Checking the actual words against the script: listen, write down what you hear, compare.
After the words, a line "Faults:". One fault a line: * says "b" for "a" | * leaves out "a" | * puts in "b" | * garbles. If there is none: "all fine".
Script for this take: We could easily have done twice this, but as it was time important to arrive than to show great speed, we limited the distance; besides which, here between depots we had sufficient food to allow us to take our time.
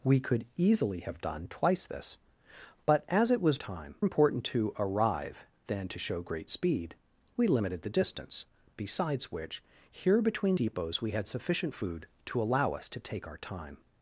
We could easily have done twice this, but as it was time important to arrive than to show great speed, we limited the distance; besides which, here between depots we had sufficient food to allow us to take our time.
Faults:
all fine